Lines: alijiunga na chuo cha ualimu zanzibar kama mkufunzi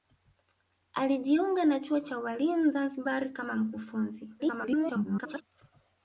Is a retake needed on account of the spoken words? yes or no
yes